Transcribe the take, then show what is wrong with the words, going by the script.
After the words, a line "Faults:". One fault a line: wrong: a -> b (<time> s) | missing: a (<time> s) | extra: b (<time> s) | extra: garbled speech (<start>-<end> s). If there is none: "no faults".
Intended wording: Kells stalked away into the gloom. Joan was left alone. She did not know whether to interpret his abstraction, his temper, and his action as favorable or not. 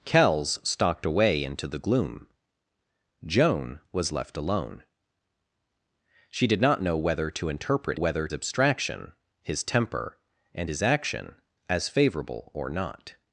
Kells stalked away into the gloom. Joan was left alone. She did not know whether to interpret whether abstraction, his temper, and his action as favorable or not.
Faults:
wrong: his -> whether (7.9 s)